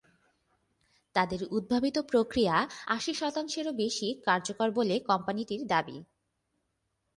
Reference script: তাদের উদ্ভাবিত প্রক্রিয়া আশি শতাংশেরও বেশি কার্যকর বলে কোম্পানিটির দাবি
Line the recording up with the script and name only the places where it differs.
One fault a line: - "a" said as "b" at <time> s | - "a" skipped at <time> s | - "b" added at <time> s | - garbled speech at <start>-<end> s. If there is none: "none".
none